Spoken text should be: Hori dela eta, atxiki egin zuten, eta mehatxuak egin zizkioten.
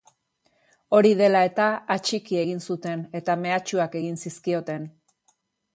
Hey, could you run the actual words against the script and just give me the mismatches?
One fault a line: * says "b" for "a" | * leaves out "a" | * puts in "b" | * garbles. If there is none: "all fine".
all fine